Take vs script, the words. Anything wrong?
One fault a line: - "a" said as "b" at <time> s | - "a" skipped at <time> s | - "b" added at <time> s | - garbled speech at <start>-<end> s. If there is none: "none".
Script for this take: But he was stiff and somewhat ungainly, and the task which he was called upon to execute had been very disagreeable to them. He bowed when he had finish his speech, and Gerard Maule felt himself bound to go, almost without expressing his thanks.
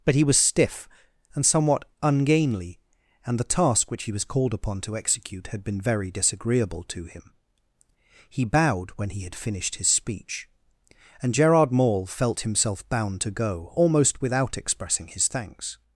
- "them" said as "him" at 7.0 s
- "finish" said as "finished" at 9.3 s